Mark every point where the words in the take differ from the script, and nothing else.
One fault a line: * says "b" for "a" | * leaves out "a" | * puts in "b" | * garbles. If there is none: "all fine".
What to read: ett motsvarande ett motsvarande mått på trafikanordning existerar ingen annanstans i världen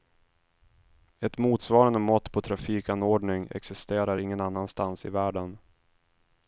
* leaves out "ett motsvarande"